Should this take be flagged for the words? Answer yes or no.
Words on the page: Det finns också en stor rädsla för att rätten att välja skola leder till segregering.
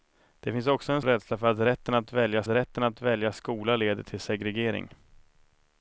yes